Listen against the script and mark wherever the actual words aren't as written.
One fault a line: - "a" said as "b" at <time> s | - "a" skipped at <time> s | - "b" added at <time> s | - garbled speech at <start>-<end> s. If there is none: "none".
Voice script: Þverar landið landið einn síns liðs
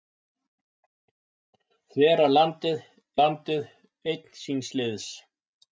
none